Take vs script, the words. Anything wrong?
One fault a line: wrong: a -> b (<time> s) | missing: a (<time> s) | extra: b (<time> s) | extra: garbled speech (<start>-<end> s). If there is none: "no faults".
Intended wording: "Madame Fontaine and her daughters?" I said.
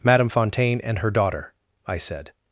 wrong: daughters -> daughter (1.1 s)